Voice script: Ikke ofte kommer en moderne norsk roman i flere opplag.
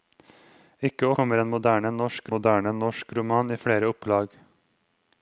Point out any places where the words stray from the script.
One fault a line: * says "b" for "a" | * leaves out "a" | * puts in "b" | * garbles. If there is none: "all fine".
* leaves out "ofte"
* puts in "moderne norsk"